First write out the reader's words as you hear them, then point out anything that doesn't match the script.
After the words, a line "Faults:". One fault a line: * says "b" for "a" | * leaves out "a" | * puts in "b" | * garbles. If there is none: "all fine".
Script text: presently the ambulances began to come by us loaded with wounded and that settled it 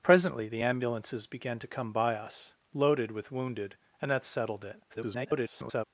presently the ambulances began to come by us loaded with wounded and that settled it [garbled]
Faults:
* garbles